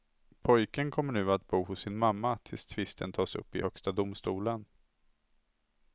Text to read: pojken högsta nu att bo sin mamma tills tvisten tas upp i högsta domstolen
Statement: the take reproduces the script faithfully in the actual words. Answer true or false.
false